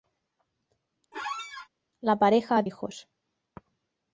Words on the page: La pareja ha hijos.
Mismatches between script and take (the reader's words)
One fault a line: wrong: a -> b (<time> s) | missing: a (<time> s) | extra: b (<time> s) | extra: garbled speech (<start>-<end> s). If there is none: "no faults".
no faults